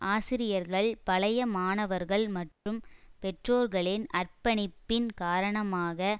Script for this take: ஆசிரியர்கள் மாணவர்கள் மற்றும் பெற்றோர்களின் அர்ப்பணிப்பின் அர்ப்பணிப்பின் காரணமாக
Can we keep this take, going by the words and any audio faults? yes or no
no